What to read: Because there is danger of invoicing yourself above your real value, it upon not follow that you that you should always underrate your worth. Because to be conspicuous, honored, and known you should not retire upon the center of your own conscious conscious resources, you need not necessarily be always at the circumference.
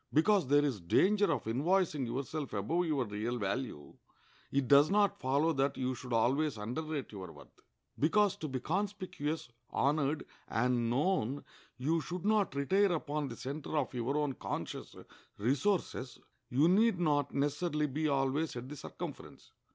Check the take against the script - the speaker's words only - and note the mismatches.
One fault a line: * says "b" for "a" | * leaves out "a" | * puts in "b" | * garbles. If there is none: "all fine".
* says "does" for "upon"
* leaves out "that you"
* leaves out "conscious"